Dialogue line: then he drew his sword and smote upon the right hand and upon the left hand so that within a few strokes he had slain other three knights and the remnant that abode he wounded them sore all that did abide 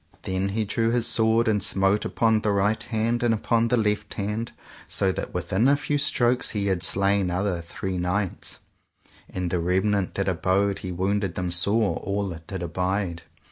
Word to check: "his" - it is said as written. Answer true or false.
true